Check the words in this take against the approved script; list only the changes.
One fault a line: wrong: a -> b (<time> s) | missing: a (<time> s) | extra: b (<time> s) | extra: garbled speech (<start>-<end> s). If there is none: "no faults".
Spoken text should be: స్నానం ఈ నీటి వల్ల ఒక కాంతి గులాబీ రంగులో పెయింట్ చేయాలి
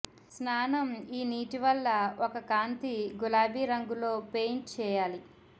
no faults